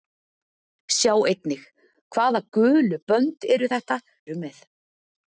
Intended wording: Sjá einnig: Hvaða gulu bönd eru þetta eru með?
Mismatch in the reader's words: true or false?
false